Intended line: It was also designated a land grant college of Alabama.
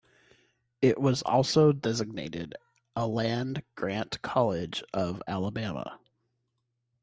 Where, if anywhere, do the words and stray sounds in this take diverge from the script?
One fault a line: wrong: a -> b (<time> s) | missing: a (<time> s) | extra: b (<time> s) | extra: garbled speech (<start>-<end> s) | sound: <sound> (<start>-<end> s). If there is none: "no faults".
no faults